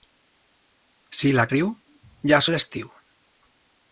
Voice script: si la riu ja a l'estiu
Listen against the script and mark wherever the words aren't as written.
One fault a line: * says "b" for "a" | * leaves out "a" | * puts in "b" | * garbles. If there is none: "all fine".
all fine